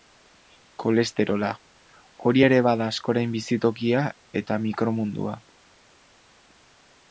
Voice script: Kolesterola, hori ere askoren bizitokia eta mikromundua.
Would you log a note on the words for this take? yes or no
yes